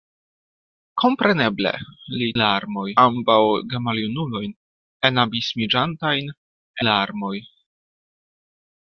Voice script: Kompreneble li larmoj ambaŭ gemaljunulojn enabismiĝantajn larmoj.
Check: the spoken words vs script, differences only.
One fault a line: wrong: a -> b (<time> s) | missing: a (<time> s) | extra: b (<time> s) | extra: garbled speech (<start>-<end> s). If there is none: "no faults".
no faults